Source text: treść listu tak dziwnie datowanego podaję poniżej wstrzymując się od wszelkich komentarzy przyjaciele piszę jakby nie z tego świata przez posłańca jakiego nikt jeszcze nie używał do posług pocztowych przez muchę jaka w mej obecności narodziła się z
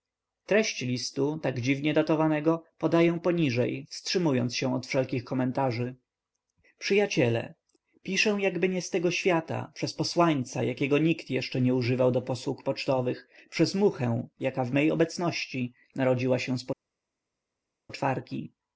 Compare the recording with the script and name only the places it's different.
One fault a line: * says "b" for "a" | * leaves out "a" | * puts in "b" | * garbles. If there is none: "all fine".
all fine